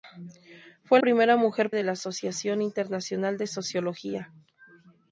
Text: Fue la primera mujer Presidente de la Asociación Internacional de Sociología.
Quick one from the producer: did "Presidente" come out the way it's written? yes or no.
no